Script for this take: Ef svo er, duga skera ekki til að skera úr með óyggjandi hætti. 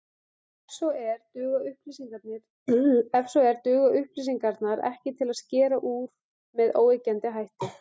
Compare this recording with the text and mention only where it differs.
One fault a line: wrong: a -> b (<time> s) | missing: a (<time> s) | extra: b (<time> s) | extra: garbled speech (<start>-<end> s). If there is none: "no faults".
wrong: skera -> upplýsingarnar (4.0 s)